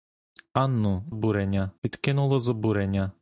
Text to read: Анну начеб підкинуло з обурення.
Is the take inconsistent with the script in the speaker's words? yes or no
yes